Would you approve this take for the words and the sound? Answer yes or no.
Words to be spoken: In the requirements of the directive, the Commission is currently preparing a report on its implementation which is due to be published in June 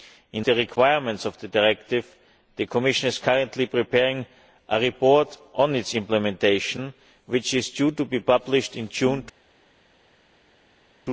yes